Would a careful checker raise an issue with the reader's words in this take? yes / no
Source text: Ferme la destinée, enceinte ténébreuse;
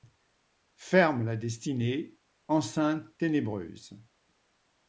no